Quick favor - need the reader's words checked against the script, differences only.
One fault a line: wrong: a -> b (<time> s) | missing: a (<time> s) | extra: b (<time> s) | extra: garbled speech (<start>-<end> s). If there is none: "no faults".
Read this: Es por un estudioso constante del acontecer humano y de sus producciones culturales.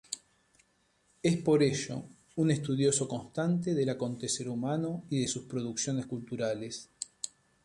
extra: ello (1.6 s)